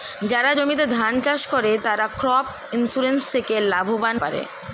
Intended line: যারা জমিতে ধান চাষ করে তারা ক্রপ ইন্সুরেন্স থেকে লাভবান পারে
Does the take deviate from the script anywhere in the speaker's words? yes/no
no